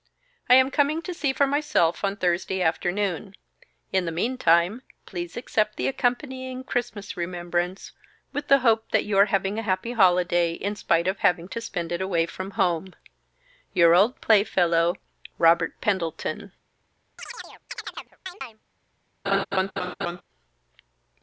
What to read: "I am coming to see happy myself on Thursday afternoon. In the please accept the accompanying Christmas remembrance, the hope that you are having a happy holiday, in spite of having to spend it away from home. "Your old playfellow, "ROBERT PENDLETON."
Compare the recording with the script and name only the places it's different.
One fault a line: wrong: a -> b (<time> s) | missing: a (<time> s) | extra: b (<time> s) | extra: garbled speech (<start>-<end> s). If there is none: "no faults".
wrong: happy -> for (1.3 s)
extra: meantime (4.1 s)
extra: with (8.3 s)